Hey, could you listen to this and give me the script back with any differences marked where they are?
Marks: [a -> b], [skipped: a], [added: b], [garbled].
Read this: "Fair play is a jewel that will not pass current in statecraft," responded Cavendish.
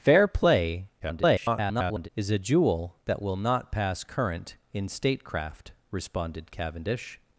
"Fair play [garbled] is a jewel that will not pass current in statecraft," responded Cavendish.